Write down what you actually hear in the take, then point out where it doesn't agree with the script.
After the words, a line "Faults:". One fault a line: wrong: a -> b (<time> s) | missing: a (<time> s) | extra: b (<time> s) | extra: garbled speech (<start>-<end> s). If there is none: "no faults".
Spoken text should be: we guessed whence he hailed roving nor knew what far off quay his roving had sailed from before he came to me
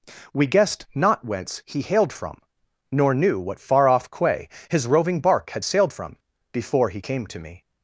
we guessed not whence he hailed from nor knew what far off quay his roving bark had sailed from before he came to me
Faults:
extra: not (0.9 s)
wrong: roving -> from (2.1 s)
extra: bark (5.2 s)